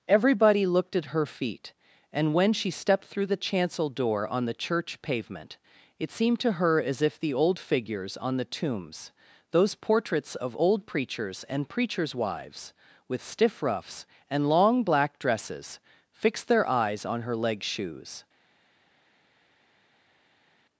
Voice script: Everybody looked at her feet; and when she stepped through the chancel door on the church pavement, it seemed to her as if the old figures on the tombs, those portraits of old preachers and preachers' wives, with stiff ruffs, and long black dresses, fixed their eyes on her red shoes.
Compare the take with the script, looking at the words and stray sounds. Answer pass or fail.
fail